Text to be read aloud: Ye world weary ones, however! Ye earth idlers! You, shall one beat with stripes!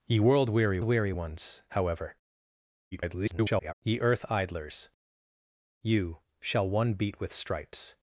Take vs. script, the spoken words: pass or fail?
fail